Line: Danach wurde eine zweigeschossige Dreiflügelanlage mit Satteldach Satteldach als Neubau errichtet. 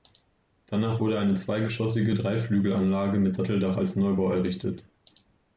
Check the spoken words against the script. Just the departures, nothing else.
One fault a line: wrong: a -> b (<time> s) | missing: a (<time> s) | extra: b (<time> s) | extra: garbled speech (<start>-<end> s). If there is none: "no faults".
missing: Satteldach (3.8 s)